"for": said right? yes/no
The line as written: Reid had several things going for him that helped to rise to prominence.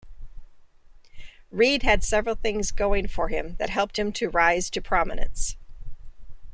yes